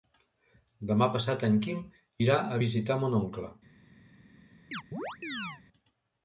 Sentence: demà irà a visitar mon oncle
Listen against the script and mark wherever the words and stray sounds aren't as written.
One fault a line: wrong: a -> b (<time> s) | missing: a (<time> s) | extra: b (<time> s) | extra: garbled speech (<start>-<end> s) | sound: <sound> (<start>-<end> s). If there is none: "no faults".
extra: passat en quim (1.2 s)
sound: chirp (4.7-5.6 s)